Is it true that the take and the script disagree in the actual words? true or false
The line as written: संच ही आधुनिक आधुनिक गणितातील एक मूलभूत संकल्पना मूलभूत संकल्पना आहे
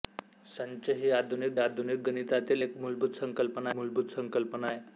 false